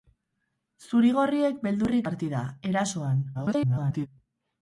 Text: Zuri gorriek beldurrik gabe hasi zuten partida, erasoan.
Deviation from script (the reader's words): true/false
true